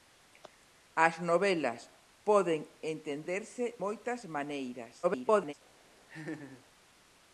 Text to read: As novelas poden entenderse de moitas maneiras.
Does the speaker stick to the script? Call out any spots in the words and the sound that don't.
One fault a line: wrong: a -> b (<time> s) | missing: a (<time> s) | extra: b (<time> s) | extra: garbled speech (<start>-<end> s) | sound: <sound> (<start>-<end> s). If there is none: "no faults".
missing: de (3.6 s)
extra: garbled speech (5.0-5.5 s)
sound: laugh (6.1-6.7 s)